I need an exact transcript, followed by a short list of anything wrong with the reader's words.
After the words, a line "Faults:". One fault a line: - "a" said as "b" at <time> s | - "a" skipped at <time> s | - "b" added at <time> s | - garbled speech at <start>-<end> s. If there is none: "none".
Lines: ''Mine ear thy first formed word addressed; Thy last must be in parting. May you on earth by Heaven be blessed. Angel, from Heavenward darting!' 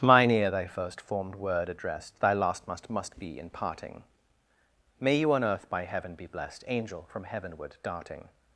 ''Mine ear thy first formed word addressed; Thy last must must be in parting. May you on earth by Heaven be blessed. Angel, from Heavenward darting!'
Faults:
- "must" added at 2.9 s